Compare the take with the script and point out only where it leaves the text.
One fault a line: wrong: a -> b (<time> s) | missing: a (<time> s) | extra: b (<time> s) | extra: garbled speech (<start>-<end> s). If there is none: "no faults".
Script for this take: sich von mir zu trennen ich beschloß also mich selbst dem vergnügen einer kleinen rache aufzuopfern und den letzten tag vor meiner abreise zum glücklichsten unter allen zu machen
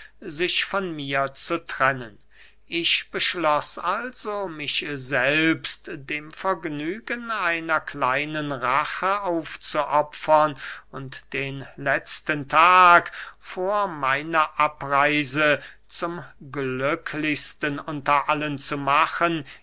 no faults